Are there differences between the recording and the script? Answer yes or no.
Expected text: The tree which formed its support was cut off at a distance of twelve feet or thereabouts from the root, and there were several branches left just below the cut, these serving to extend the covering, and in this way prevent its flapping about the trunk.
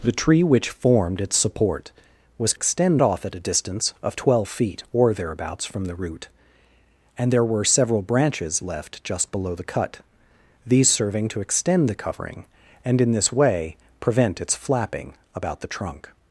yes